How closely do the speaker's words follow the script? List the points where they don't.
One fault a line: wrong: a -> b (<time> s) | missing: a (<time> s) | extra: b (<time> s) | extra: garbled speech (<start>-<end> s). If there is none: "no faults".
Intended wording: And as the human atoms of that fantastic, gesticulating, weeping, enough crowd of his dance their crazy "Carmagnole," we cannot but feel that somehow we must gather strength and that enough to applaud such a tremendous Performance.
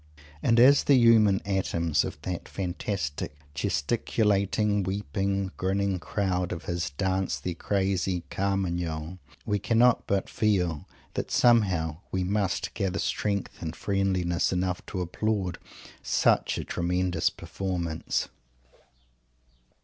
wrong: enough -> grinning (5.6 s)
wrong: that -> friendliness (13.8 s)